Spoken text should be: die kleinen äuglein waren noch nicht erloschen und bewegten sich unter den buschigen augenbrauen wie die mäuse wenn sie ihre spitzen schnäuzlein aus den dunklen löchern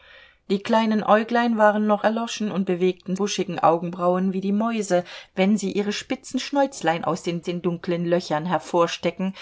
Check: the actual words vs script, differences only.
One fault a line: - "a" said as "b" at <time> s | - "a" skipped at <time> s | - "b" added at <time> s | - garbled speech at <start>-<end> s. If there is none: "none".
- "nicht" skipped at 2.0 s
- "sich unter den" skipped at 3.2 s
- "den" added at 7.4 s